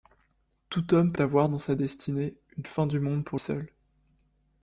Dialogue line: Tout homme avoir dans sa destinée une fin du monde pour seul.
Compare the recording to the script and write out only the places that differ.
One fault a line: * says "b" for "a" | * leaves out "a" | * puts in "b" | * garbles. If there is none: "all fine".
all fine